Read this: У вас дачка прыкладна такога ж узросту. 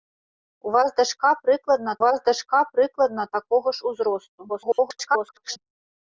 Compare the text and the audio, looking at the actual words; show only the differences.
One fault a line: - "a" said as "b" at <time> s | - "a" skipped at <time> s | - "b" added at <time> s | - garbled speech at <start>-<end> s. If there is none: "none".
- "вас дачка прыкладна" added at 2.0 s
- garbled speech at 4.5-5.6 s